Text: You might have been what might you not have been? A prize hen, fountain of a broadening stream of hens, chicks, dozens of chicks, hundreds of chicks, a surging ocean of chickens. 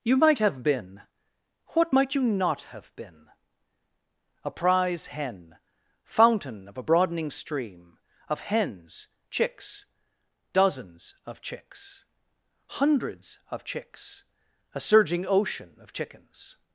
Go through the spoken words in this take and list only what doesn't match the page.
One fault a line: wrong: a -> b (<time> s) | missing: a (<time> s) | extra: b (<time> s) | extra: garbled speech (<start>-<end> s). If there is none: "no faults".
no faults